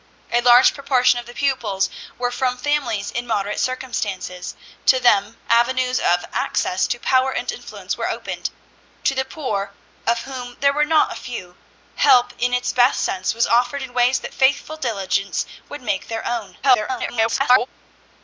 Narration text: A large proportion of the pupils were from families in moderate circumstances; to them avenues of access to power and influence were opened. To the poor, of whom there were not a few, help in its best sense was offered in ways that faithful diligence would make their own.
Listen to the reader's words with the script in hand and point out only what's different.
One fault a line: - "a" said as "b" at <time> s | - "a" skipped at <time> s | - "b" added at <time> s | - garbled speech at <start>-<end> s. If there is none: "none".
- garbled speech at 16.6-17.7 s